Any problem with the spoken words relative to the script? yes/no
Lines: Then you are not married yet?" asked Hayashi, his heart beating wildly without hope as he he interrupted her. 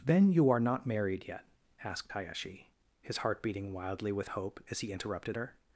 yes